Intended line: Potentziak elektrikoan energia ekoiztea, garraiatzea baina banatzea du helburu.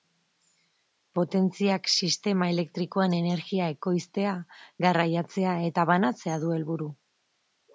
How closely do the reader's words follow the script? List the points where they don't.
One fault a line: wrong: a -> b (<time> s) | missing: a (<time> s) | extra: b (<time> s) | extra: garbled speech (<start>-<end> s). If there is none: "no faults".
extra: sistema (1.9 s)
wrong: baina -> eta (5.7 s)